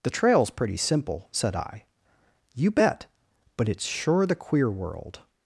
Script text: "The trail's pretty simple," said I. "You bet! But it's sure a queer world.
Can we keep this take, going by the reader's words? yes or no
no